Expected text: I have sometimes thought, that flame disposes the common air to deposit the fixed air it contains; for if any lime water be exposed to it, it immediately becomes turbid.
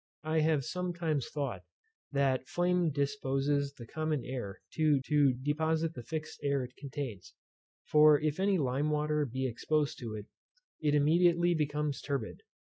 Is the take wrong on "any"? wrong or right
right